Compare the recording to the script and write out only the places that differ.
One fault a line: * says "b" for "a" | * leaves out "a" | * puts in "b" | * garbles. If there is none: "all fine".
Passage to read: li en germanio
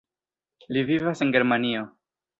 * puts in "vivas"